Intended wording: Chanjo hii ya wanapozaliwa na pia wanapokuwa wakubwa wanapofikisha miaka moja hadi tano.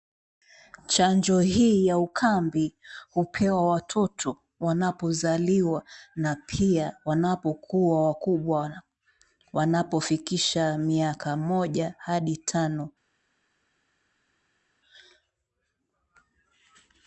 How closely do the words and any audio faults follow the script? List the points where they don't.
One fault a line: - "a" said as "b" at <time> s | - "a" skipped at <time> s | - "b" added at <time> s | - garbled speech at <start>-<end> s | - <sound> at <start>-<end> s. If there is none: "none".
- "ukambi hupewa watoto" added at 2.0 s